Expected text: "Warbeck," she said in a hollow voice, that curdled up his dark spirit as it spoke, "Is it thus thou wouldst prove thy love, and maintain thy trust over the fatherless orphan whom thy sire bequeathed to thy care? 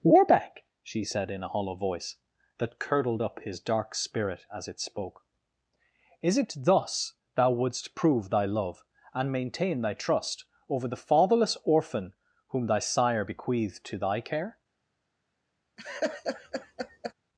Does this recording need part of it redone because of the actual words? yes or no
no